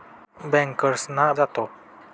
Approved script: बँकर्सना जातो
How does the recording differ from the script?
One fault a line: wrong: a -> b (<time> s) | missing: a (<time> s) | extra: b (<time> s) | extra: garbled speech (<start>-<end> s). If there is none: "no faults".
no faults